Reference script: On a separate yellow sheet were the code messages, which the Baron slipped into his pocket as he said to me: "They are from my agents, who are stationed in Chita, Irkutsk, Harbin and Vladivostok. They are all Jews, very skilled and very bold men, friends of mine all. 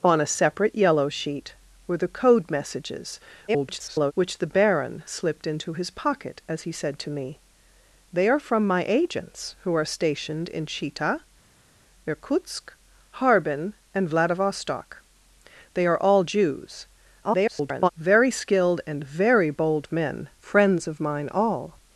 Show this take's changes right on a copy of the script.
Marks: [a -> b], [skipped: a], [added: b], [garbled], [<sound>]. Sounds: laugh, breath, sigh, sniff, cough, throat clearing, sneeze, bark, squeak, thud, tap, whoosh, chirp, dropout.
On a separate yellow sheet were the code messages, [garbled] which the Baron slipped into his pocket as he said to me: "They are from my agents, who are stationed in Chita, Irkutsk, Harbin and Vladivostok. They are all Jews, [garbled] very skilled and very bold men, friends of mine all.